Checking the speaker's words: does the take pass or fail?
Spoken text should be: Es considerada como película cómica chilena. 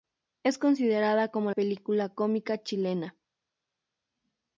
pass